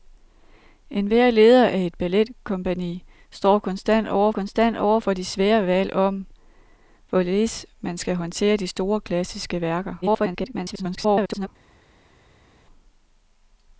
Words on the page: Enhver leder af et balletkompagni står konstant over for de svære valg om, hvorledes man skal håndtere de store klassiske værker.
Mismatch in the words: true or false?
true